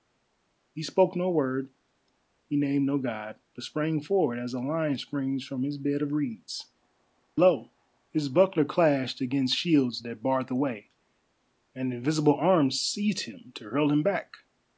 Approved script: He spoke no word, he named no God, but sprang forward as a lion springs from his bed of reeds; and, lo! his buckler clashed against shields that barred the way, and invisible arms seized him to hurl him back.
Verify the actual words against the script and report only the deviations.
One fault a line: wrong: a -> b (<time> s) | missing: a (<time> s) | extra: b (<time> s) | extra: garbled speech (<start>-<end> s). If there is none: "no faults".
missing: and (6.7 s)